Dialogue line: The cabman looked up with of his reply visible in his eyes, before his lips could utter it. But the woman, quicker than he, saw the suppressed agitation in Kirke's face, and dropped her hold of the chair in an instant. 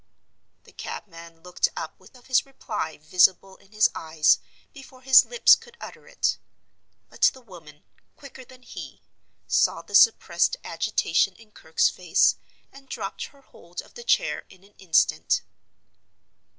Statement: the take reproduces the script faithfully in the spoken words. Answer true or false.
true